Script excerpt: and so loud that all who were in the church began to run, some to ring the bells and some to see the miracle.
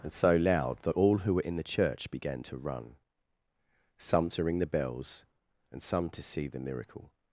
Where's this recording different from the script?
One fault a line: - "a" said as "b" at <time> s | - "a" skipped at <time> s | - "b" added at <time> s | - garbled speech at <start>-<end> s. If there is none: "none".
none